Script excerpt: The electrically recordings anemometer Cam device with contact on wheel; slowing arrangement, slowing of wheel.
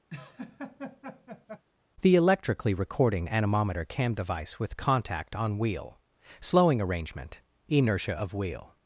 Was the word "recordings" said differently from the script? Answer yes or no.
yes